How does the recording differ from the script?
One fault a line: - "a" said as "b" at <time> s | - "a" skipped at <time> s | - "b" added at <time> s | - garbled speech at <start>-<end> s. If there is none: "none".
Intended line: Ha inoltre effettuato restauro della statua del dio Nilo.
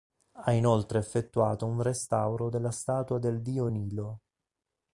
- "un" added at 1.7 s